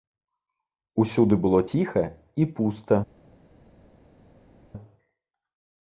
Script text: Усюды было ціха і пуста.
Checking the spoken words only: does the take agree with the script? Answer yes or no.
yes